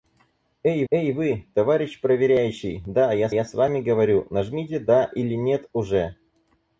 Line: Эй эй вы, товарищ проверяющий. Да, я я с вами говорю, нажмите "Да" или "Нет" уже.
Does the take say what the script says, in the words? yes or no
yes